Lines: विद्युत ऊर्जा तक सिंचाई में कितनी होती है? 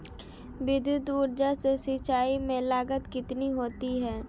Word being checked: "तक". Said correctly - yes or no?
no